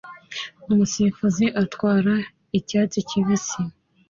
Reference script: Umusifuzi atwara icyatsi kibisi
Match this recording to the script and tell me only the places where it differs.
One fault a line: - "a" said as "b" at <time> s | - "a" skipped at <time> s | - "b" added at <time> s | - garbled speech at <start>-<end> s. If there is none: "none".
none